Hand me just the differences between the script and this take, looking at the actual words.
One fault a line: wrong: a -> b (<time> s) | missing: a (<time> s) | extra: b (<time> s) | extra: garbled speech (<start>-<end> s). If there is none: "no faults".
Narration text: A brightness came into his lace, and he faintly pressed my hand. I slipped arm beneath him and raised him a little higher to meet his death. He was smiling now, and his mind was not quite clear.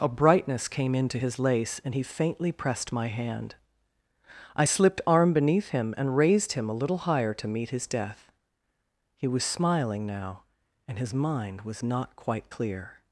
no faults